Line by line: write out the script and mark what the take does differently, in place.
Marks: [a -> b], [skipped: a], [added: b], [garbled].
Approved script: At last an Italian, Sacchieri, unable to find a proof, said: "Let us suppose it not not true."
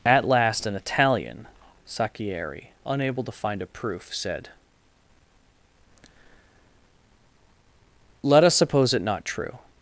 At last an Italian, Sacchieri, unable to find a proof, said: "Let us suppose it not [skipped: not] true."